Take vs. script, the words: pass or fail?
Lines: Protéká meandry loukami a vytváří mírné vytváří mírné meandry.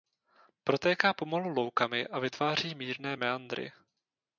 fail